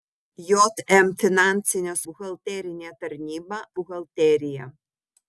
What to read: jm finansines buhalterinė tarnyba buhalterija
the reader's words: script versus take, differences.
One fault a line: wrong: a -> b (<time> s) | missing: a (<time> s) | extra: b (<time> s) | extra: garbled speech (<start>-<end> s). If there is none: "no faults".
no faults